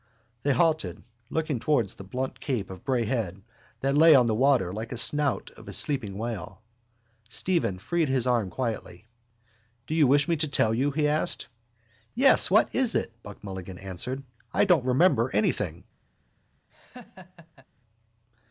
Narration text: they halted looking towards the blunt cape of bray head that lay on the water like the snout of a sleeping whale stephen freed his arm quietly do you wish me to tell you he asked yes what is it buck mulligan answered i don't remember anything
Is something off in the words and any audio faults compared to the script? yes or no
yes